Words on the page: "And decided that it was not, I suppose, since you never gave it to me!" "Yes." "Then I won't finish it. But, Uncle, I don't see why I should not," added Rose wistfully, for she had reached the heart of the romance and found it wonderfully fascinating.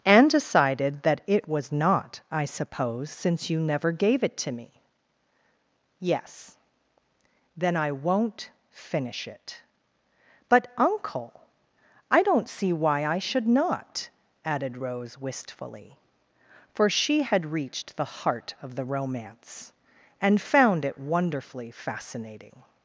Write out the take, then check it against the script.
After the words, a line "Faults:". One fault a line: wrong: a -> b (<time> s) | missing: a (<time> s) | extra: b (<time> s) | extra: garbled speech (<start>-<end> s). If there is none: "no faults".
"And decided that it was not, I suppose, since you never gave it to me!" "Yes." "Then I won't finish it. But, Uncle, I don't see why I should not," added Rose wistfully, for she had reached the heart of the romance and found it wonderfully fascinating.
Faults:
no faults